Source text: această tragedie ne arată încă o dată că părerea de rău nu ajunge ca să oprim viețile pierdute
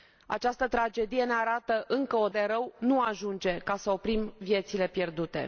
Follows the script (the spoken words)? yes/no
no